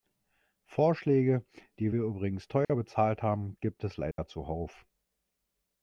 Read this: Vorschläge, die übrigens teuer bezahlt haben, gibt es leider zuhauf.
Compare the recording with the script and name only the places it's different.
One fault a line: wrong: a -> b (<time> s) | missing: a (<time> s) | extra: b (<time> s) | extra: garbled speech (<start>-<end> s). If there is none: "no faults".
extra: wir (1.9 s)